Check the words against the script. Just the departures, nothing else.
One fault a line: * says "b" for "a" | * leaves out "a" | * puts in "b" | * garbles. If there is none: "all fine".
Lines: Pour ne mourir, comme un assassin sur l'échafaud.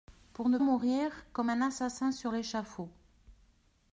all fine